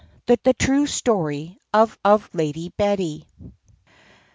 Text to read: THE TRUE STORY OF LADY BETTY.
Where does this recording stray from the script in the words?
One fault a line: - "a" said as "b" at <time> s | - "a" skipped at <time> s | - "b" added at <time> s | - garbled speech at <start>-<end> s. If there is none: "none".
- "the" added at 0.4 s
- "OF" added at 2.1 s